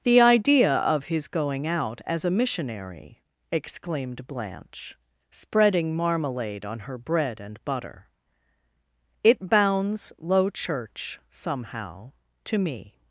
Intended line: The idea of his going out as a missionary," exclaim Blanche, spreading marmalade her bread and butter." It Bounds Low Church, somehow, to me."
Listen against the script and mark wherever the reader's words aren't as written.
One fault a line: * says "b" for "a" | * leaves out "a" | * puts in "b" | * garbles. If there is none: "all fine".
* says "exclaimed" for "exclaim"
* puts in "on"